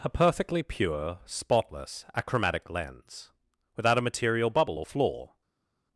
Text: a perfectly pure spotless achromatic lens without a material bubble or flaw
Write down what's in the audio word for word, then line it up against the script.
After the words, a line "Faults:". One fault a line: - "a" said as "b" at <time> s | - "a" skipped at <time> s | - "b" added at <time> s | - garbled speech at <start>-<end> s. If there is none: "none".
a perfectly pure spotless achromatic lens without a material bubble or flaw
Faults:
none